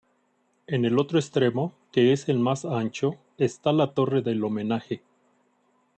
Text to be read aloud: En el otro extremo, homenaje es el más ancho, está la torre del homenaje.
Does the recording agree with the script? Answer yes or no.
no